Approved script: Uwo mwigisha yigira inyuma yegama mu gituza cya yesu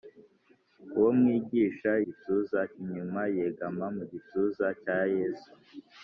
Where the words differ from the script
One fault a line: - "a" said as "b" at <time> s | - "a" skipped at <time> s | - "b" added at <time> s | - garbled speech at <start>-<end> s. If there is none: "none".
- "yigira" said as "gituza" at 2.0 s